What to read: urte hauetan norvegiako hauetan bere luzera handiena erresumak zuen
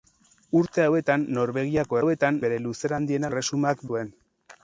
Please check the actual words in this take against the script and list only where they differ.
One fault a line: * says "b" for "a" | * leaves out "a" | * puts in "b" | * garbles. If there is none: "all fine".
all fine